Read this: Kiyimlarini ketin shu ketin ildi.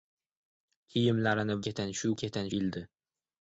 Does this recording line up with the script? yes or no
yes